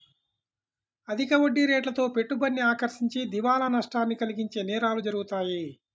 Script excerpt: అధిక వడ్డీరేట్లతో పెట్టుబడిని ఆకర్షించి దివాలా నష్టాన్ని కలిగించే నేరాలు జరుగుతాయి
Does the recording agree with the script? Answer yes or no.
yes